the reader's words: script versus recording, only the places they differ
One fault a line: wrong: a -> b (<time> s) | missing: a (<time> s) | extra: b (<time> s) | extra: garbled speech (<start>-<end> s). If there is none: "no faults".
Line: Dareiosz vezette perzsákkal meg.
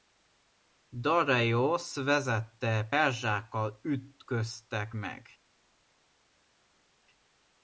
extra: ütköztek (3.8 s)